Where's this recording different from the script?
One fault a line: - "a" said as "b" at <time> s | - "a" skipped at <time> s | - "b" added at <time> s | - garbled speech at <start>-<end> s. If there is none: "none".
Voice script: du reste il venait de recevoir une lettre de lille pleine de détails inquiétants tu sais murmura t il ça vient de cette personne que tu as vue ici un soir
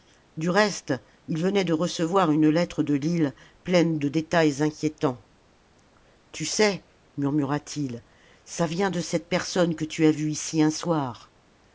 none